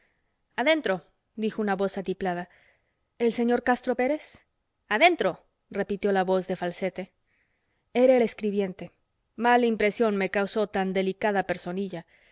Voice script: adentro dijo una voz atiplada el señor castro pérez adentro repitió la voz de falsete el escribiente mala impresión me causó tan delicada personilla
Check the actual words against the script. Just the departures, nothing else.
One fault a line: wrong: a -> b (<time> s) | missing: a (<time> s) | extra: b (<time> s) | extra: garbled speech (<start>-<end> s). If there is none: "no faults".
extra: era (7.9 s)